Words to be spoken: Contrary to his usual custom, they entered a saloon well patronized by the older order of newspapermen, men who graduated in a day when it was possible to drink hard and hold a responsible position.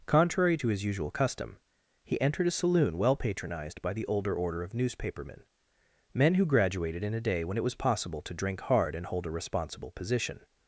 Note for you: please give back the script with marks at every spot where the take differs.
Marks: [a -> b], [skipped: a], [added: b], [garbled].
Contrary to his usual custom, [they -> he] entered a saloon well patronized by the older order of newspapermen, men who graduated in a day when it was possible to drink hard and hold a responsible position.